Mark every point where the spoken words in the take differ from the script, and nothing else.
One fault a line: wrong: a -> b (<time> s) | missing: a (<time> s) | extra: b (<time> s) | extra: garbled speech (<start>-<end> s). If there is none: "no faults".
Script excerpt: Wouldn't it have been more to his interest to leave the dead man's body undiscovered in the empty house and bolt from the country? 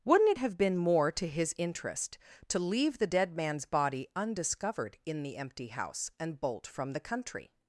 no faults